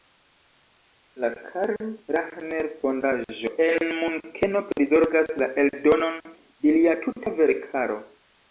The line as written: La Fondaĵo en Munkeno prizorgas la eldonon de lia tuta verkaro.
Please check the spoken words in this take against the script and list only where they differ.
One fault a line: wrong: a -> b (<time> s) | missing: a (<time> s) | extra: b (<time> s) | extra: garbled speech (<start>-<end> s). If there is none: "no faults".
extra: Karl Rahner (1.5 s)